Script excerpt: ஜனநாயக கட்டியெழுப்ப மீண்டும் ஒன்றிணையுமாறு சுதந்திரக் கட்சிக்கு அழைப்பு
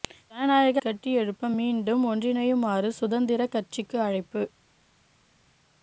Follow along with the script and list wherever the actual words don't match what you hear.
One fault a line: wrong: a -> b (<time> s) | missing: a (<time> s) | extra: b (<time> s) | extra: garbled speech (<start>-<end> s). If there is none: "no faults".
no faults